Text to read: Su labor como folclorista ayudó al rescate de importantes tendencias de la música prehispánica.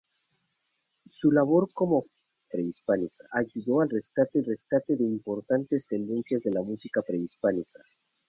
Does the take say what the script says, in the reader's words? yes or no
no